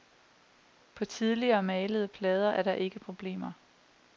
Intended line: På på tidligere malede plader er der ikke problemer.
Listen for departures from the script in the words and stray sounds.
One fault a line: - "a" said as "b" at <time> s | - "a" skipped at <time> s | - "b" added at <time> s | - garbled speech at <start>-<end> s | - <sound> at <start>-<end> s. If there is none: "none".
- "på" skipped at 1.1 s